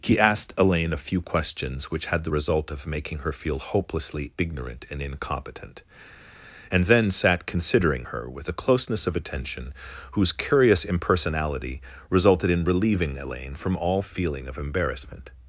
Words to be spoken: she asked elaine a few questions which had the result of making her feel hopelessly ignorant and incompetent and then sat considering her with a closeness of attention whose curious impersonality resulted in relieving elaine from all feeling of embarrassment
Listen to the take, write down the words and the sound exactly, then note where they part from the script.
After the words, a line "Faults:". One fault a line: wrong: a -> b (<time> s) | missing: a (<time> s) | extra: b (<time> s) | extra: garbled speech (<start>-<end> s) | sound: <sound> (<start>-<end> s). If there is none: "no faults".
he asked elaine a few questions which had the result of making her feel hopelessly ignorant and incompetent and then sat considering her with a closeness of attention whose curious impersonality resulted in relieving elaine from all feeling of embarrassment
Faults:
wrong: she -> he (0.0 s)